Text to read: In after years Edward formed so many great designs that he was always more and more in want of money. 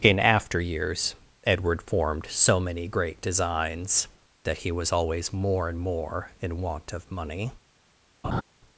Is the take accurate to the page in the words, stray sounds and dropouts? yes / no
no